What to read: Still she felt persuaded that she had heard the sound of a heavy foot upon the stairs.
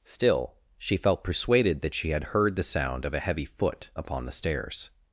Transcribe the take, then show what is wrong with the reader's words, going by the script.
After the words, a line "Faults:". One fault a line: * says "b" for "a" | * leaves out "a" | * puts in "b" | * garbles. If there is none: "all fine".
Still she felt persuaded that she had heard the sound of a heavy foot upon the stairs.
Faults:
all fine